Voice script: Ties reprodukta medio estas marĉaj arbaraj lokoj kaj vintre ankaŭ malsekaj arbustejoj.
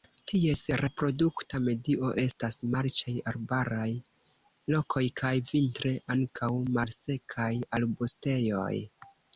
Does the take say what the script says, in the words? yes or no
yes